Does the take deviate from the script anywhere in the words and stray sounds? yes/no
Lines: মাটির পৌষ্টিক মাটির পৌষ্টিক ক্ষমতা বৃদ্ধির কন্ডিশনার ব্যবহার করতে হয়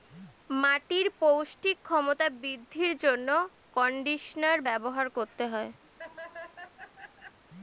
yes